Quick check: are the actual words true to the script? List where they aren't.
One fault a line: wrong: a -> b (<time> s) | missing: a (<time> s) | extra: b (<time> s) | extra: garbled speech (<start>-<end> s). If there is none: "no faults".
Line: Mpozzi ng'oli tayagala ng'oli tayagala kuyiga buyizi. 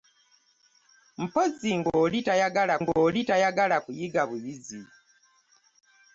no faults